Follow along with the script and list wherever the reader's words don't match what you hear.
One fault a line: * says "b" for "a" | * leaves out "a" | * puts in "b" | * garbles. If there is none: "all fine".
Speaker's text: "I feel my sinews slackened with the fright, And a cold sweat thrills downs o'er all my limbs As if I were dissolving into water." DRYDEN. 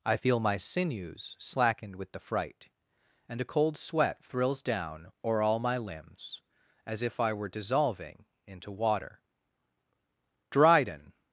* says "down" for "downs"